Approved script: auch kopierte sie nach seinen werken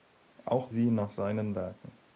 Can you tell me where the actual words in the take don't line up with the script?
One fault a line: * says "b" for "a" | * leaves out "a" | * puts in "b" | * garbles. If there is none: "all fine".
* leaves out "kopierte"